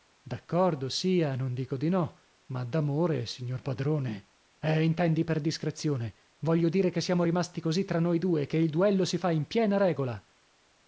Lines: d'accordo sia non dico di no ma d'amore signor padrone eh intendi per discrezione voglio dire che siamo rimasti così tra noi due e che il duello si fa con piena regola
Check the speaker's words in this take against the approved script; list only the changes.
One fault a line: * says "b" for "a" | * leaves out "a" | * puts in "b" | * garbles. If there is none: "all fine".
* says "in" for "con"